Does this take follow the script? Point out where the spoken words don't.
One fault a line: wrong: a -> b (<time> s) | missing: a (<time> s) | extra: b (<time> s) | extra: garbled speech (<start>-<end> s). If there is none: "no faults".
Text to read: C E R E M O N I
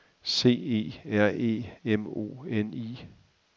no faults